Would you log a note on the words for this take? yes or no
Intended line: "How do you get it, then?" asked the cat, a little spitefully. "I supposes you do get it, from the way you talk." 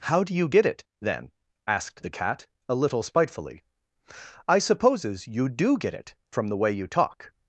no